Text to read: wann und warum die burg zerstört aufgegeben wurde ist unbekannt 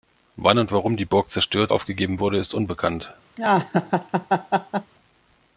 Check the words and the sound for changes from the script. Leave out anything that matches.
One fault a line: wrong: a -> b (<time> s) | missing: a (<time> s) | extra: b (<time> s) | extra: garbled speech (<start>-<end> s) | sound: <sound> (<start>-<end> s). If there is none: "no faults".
sound: laugh (3.4-4.9 s)